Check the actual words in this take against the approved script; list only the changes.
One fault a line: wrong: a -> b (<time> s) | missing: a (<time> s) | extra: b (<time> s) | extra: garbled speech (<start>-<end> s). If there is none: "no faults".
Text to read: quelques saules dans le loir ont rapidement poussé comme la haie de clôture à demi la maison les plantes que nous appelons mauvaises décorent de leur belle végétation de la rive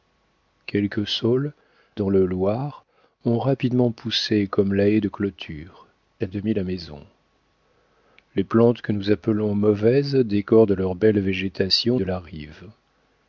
no faults